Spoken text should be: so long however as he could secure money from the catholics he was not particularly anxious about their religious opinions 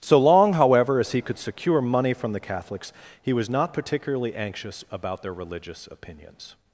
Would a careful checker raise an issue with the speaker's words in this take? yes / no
no